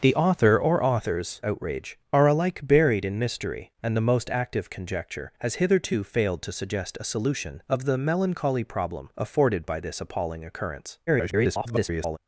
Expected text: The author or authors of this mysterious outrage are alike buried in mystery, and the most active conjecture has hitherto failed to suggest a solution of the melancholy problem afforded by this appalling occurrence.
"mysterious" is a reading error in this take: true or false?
true